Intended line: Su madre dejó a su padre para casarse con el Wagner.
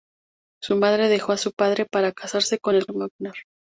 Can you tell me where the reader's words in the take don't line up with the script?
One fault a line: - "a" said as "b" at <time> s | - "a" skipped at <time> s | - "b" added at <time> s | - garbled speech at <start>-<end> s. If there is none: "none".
none